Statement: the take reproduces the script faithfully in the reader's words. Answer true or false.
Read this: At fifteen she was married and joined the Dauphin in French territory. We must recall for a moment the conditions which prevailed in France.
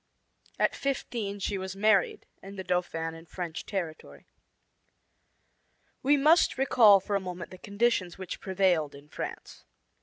false